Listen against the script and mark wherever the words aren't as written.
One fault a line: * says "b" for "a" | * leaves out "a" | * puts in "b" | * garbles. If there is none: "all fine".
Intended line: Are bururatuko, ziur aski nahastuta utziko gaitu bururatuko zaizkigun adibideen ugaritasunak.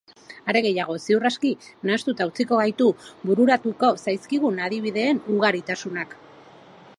* says "gehiago" for "bururatuko"